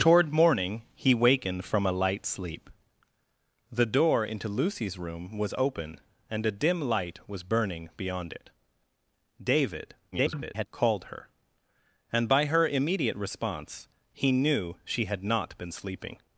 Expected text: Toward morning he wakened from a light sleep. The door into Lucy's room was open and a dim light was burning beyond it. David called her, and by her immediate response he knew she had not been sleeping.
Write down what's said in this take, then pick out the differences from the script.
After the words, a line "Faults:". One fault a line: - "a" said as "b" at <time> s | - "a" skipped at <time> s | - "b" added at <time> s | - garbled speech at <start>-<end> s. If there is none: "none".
Toward morning he wakened from a light sleep. The door into Lucy's room was open and a dim light was burning beyond it. David [garbled] called her, and by her immediate response he knew she had not been sleeping.
Faults:
- garbled speech at 10.1-10.7 s